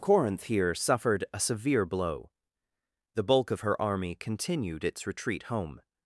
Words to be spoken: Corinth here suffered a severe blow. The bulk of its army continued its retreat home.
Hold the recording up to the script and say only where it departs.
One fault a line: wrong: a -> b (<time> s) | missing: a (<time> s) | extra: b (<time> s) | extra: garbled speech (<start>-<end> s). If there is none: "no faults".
wrong: its -> her (3.6 s)